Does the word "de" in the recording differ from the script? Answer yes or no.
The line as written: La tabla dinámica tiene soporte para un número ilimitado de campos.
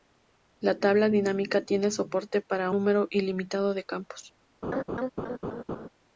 no